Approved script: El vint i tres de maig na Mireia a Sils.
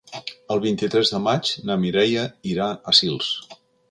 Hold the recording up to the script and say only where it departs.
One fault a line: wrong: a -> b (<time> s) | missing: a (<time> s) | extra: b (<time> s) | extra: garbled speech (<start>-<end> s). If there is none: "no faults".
extra: irà (2.6 s)